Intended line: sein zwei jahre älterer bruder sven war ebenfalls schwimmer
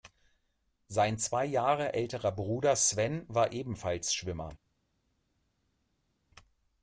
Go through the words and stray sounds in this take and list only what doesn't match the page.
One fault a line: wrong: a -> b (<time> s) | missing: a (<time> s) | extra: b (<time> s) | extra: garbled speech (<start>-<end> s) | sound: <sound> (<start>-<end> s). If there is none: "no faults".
no faults